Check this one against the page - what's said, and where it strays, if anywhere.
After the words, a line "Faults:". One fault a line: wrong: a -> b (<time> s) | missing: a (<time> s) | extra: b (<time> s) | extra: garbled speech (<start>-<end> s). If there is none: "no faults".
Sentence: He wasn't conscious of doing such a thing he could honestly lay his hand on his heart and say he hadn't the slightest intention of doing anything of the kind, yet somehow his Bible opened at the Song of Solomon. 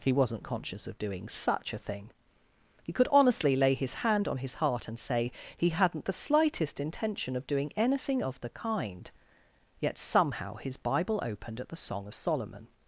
He wasn't conscious of doing such a thing he could honestly lay his hand on his heart and say he hadn't the slightest intention of doing anything of the kind, yet somehow his Bible opened at the Song of Solomon.
Faults:
no faults